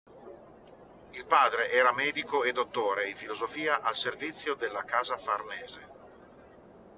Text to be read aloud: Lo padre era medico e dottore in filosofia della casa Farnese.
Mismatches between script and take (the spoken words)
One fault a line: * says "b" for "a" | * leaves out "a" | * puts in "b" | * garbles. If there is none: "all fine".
* says "Il" for "Lo"
* puts in "al servizio"